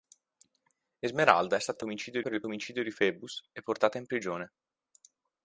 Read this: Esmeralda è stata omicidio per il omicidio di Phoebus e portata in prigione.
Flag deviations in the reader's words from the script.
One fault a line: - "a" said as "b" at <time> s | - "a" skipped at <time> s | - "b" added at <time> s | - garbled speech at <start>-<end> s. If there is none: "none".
none